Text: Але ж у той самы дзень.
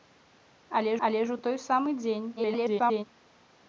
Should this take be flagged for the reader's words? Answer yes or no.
yes